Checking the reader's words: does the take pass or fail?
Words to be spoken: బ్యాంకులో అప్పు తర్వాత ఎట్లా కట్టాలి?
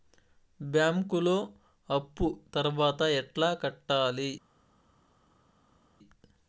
pass